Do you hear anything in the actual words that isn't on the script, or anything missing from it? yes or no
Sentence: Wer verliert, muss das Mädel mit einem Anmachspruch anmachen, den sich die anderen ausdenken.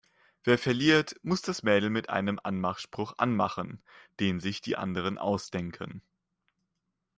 no